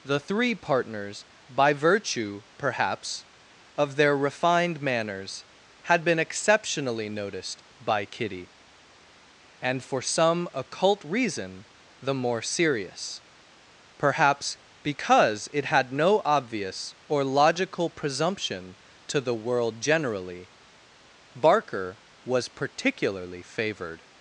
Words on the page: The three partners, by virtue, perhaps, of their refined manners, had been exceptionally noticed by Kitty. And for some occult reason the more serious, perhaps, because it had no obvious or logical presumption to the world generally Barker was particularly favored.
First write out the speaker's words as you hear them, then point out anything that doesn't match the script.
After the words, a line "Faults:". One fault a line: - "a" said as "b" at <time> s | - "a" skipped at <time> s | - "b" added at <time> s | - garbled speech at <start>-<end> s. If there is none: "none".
The three partners, by virtue, perhaps, of their refined manners, had been exceptionally noticed by Kitty. And for some occult reason the more serious, perhaps, because it had no obvious or logical presumption to the world generally Barker was particularly favored.
Faults:
none